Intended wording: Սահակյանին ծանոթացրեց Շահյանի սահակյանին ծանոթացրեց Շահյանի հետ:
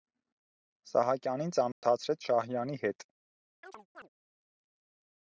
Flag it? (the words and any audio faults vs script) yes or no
yes